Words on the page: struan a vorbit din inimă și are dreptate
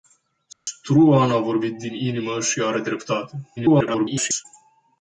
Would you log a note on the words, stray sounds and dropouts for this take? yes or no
yes